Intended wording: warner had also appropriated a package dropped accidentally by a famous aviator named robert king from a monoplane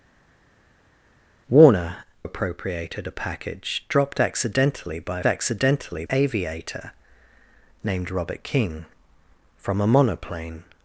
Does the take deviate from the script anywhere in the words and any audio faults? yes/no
yes